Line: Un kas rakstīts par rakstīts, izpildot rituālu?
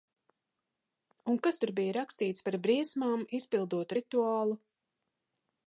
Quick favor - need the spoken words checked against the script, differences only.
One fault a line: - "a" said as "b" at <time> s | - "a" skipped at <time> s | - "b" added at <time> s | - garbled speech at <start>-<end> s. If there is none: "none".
- "tur bija" added at 1.6 s
- "rakstīts" said as "briesmām" at 2.7 s